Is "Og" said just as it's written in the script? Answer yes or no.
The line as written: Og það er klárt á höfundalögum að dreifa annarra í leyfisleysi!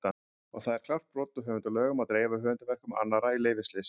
yes